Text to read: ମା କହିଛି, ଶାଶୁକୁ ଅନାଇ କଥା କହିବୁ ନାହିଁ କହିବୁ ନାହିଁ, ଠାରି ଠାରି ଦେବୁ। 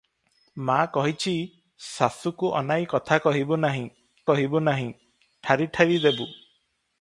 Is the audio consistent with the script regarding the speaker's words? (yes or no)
yes